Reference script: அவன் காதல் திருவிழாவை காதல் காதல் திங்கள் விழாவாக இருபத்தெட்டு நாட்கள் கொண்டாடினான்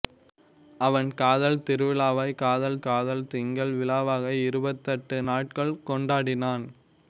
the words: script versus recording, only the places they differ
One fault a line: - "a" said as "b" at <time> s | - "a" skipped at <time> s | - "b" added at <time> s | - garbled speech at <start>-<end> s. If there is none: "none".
none